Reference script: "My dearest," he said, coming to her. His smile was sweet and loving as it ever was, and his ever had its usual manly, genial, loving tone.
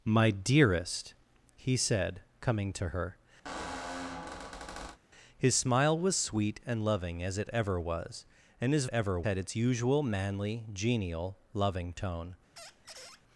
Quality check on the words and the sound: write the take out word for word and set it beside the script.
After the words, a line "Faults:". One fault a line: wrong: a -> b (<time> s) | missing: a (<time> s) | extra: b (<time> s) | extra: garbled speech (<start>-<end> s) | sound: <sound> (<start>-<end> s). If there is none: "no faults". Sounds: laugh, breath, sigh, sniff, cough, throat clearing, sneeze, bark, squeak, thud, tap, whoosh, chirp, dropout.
"My dearest," he said, coming to her. His smile was sweet and loving as it ever was, and his ever had its usual manly, genial, loving tone.
Faults:
sound: squeak (3.4-5.0 s)
sound: squeak (12.6-13.2 s)